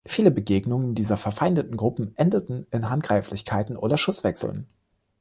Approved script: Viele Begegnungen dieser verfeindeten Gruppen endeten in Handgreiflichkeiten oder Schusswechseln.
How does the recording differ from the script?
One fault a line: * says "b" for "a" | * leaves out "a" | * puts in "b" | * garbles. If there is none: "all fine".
all fine